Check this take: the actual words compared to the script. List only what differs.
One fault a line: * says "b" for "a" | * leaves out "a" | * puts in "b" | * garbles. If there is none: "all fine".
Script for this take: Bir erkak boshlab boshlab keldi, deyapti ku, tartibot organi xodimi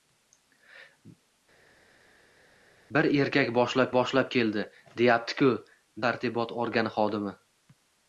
all fine